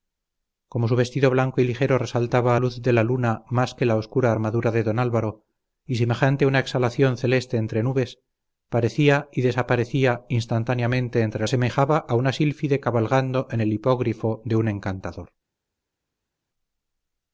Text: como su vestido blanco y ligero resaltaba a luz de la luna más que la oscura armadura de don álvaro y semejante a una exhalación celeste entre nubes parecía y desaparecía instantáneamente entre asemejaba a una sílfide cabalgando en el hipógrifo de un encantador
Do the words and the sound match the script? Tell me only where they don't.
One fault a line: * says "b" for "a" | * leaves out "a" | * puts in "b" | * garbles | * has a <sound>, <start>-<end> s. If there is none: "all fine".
all fine